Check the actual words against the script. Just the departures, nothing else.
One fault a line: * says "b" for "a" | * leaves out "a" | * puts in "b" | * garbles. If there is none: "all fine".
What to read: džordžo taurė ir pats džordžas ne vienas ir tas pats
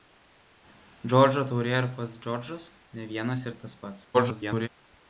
* garbles